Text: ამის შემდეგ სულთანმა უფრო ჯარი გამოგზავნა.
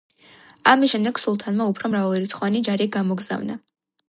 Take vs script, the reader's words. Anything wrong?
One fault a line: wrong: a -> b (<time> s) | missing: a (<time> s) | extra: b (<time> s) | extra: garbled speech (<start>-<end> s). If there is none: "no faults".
extra: მრავალრიცხოვანი (2.0 s)